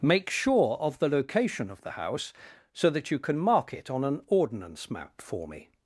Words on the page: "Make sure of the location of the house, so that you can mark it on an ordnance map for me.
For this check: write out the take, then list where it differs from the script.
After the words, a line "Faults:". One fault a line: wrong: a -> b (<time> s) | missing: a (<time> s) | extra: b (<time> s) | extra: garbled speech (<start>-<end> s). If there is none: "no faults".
"Make sure of the location of the house, so that you can mark it on an ordnance map for me.
Faults:
no faults